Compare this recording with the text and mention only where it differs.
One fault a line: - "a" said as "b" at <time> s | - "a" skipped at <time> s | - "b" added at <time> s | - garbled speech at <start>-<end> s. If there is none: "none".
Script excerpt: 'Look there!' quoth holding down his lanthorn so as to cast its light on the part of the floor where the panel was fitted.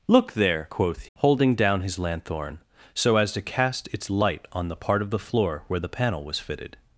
none